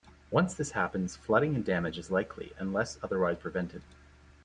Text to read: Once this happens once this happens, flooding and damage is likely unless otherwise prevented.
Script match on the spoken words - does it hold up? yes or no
no